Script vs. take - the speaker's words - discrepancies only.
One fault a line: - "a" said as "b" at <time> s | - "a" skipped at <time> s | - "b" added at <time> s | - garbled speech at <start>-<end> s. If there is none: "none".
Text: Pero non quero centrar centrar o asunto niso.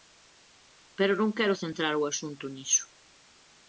- "centrar" skipped at 1.9 s